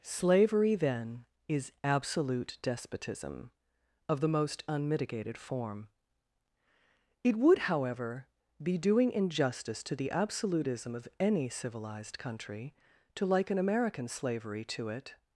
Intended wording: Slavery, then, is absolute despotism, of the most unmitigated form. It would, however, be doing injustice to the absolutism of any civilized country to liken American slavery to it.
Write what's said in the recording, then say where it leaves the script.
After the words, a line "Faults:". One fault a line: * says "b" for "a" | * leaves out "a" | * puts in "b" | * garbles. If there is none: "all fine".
Slavery, then, is absolute despotism, of the most unmitigated form. It would, however, be doing injustice to the absolutism of any civilized country to liken American slavery to it.
Faults:
all fine